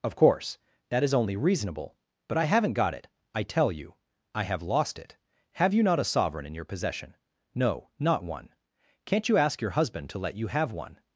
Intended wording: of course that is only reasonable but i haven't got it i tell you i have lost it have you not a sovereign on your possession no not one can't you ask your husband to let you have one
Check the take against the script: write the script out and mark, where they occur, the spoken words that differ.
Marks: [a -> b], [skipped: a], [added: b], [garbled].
of course that is only reasonable but i haven't got it i tell you i have lost it have you not a sovereign [on -> in] your possession no not one can't you ask your husband to let you have one